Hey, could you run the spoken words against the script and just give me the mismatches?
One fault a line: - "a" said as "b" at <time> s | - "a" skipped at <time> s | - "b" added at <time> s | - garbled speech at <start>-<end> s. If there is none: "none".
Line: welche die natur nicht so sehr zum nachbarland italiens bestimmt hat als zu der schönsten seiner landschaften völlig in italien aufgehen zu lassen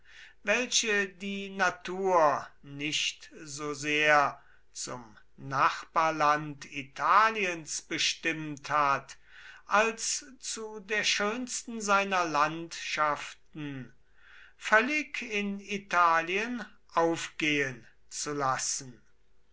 none